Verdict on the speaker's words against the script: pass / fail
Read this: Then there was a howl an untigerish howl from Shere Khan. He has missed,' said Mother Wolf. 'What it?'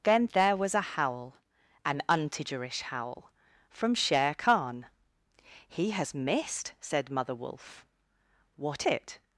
pass